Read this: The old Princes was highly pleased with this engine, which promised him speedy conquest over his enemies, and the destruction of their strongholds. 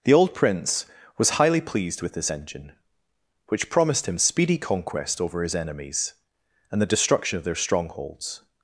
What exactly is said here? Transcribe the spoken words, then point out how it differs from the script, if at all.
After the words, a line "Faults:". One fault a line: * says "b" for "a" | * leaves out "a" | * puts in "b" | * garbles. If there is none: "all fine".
The old Prince was highly pleased with this engine, which promised him speedy conquest over his enemies, and the destruction of their strongholds.
Faults:
* says "Prince" for "Princes"